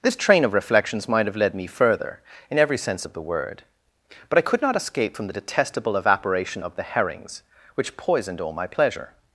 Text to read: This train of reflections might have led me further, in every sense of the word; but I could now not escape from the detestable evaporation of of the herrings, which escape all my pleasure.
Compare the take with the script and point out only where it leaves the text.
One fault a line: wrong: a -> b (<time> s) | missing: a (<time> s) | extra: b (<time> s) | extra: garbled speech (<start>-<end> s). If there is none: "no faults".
missing: now (4.6 s)
missing: of (6.8 s)
wrong: escape -> poisoned (7.9 s)